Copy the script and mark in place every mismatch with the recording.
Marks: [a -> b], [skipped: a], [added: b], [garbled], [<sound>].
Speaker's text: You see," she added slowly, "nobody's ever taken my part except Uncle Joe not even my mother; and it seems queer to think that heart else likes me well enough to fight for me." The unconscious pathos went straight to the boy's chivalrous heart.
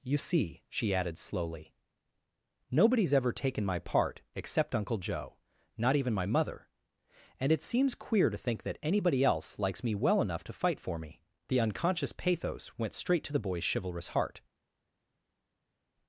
You see," she added slowly, "nobody's ever taken my part except Uncle Joe not even my mother; and it seems queer to think that [heart -> anybody] else likes me well enough to fight for me." The unconscious pathos went straight to the boy's chivalrous heart.